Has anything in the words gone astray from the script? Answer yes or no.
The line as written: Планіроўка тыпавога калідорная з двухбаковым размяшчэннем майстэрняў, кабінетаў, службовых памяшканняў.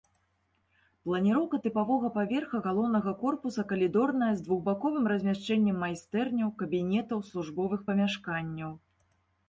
yes